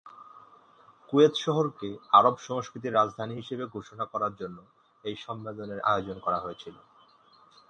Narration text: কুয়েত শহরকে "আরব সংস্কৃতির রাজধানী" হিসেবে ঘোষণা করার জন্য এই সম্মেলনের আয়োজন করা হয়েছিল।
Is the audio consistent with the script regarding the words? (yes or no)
yes